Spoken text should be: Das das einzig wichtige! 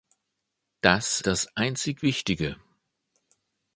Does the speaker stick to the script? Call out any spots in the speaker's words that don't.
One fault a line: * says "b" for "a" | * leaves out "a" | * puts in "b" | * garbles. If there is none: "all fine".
all fine